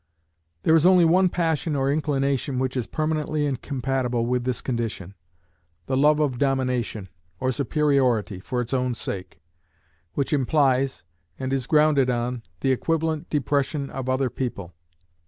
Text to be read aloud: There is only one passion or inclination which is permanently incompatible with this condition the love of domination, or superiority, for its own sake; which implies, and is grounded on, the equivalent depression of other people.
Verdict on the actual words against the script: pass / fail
pass